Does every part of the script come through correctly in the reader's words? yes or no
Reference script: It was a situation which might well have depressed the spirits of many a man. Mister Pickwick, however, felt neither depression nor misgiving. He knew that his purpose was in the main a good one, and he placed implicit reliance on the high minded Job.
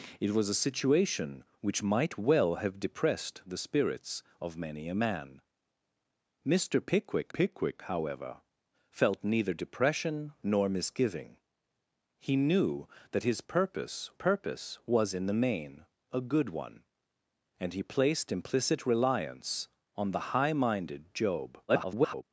no